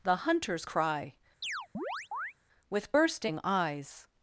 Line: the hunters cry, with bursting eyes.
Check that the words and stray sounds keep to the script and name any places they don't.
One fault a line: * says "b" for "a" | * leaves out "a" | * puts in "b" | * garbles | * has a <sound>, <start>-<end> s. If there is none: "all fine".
* has a chirp, 1.4-2.3 s